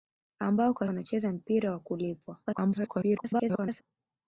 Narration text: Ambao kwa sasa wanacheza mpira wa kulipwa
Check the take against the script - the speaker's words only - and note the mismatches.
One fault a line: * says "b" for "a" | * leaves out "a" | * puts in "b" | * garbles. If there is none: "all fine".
* leaves out "sasa"
* garbles